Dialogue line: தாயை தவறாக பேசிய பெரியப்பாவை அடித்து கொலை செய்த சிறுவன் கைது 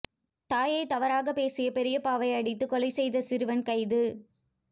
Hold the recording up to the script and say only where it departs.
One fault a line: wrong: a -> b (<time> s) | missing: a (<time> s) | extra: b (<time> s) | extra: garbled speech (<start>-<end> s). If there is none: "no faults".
no faults